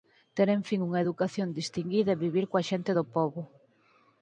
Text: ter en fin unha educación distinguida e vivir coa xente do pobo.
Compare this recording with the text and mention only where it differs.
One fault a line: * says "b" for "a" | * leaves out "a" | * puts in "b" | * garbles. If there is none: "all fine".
all fine